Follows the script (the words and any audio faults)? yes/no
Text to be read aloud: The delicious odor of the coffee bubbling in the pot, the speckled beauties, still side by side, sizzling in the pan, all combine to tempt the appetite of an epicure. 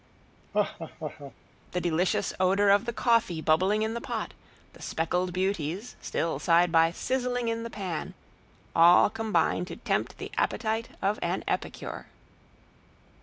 no